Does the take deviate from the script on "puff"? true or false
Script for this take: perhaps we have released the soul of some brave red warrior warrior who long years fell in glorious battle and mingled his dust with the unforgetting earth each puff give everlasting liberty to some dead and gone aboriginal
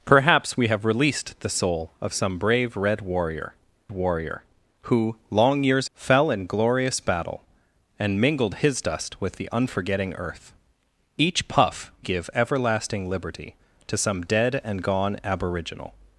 false